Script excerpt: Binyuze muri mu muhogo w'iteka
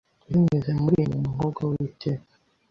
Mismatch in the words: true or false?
false